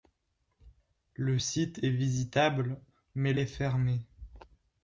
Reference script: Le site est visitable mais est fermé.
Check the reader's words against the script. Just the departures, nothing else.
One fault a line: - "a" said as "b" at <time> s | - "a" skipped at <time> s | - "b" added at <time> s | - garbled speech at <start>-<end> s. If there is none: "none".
none